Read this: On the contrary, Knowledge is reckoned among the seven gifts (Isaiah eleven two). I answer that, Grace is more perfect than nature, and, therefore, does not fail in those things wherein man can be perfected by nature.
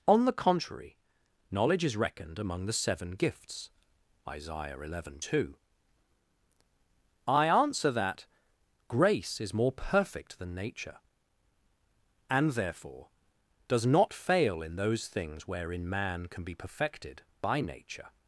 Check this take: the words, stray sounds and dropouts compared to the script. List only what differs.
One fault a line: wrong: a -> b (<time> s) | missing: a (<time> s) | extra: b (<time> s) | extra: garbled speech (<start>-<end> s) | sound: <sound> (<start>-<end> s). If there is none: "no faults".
no faults